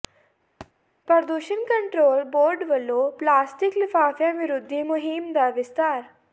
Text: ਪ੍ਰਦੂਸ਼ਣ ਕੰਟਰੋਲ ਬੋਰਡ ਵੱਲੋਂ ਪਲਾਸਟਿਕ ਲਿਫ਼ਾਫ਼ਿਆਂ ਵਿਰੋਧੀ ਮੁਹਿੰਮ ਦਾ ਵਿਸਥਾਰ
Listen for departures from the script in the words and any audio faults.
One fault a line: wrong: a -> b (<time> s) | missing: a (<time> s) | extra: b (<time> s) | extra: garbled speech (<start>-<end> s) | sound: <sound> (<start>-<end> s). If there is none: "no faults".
sound: thud (0.6-0.7 s)